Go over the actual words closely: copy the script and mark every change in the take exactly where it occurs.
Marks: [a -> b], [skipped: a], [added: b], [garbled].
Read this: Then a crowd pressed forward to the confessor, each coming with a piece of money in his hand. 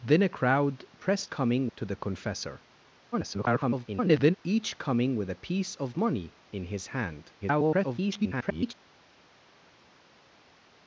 Then a crowd pressed [forward -> coming] to the confessor, [garbled] each coming with a piece of money in his hand. [garbled]